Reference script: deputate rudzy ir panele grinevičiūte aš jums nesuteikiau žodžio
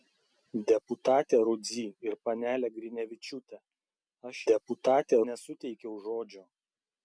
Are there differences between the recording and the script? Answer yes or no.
yes